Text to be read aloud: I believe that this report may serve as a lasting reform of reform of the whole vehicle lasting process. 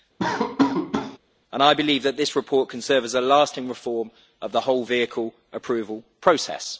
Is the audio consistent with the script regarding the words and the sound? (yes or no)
no